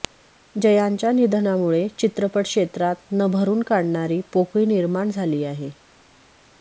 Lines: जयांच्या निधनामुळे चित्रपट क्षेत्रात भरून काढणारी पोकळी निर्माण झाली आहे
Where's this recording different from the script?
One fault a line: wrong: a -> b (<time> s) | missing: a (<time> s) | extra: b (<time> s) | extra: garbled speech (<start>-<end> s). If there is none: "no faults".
extra: न (3.1 s)